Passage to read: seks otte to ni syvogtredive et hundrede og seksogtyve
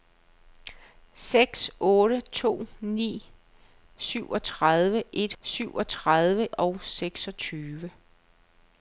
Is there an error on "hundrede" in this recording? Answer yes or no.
yes